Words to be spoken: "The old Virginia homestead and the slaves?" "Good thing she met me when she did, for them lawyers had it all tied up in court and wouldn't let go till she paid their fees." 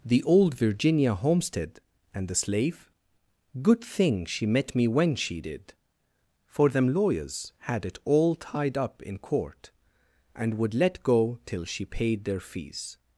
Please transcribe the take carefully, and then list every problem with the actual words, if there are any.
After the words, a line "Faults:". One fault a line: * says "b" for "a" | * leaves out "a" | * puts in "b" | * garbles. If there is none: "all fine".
"The old Virginia homestead and the slave?" "Good thing she met me when she did, for them lawyers had it all tied up in court and would let go till she paid their fees."
Faults:
* says "slave" for "slaves"
* says "would" for "wouldn't"